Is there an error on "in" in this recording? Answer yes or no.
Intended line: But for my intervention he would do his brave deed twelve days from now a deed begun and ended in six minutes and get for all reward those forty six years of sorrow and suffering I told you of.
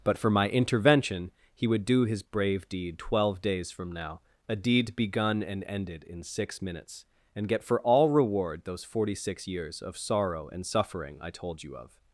no